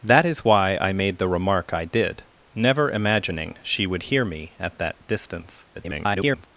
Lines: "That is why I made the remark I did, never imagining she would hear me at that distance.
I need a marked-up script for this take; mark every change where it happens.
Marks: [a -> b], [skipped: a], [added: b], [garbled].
"That is why I made the remark I did, never imagining she would hear me at that distance. [garbled]